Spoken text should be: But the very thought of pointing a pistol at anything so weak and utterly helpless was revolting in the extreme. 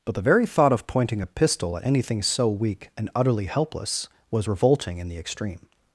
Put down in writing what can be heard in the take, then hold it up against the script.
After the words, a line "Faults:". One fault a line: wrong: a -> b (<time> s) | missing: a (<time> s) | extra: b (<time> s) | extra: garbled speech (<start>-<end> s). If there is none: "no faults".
But the very thought of pointing a pistol at anything so weak and utterly helpless was revolting in the extreme.
Faults:
no faults